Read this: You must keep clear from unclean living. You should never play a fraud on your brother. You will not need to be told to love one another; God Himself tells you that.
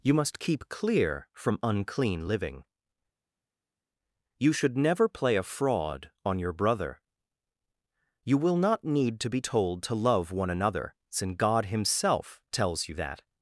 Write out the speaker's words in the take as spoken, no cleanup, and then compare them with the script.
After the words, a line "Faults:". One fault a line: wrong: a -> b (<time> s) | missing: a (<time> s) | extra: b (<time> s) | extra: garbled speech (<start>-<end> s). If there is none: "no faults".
You must keep clear from unclean living. You should never play a fraud on your brother. You will not need to be told to love one another; since God Himself tells you that.
Faults:
extra: since (11.1 s)